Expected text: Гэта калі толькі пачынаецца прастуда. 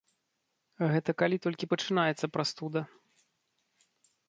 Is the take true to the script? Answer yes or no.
yes